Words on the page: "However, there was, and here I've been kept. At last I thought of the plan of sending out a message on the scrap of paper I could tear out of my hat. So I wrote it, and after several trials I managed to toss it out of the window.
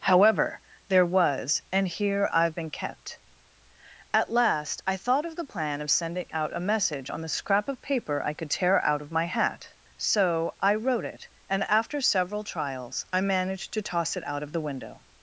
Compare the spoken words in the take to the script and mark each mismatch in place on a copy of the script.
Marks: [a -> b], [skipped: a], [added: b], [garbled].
"However, there was, and here I've been kept. At last I thought of the plan of sending out a message on the scrap of paper I could tear out of my hat. So I wrote it, and after several trials I managed to toss it out of the window.